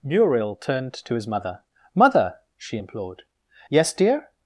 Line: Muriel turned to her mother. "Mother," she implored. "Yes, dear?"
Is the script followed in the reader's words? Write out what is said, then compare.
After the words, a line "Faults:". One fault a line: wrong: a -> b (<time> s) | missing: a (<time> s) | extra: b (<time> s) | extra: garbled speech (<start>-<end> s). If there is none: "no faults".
Muriel turned to his mother. "Mother," she implored. "Yes, dear?"
Faults:
wrong: her -> his (1.1 s)